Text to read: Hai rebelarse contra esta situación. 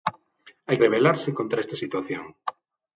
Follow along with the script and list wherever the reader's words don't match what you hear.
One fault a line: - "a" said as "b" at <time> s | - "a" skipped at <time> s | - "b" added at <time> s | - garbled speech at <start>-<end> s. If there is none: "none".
none